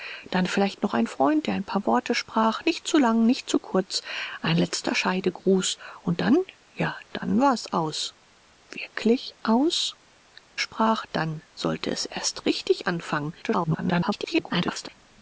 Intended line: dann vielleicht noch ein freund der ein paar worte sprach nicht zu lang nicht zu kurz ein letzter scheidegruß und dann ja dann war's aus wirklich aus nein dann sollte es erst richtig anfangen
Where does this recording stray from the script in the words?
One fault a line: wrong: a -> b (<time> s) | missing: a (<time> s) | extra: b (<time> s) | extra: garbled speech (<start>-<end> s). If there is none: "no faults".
wrong: nein -> sprach (10.6 s)
extra: garbled speech (13.4-14.9 s)